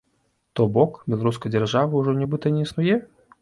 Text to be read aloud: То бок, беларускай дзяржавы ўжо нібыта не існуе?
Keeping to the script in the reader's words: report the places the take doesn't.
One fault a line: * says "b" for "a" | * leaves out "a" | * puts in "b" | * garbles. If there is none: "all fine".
all fine